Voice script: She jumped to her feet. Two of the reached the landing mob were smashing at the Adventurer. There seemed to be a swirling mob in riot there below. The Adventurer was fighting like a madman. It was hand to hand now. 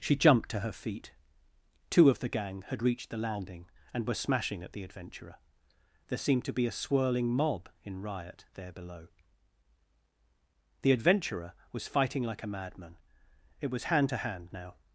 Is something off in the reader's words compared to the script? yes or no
yes